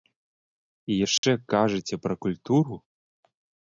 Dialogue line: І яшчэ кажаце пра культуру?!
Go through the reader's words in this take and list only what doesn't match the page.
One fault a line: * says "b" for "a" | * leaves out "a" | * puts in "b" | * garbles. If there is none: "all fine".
all fine